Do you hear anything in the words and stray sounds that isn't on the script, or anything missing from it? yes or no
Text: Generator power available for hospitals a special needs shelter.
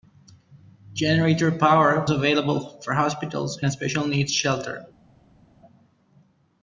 no